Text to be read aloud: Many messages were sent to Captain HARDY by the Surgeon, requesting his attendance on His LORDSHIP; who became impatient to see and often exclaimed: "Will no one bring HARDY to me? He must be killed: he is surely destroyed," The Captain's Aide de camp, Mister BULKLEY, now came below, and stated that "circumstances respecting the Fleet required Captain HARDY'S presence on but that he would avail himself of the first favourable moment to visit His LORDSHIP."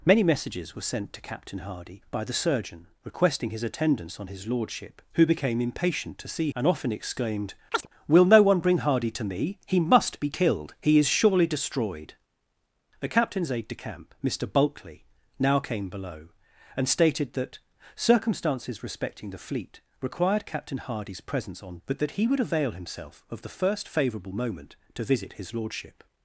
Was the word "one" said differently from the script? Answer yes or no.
no